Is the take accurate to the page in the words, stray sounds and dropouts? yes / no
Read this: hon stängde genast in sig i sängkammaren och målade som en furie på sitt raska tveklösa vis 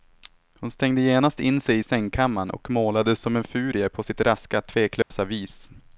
no